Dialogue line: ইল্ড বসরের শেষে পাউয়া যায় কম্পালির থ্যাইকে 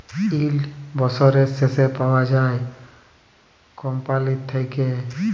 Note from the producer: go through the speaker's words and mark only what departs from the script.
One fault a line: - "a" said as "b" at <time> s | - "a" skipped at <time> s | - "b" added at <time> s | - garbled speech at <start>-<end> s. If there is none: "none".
none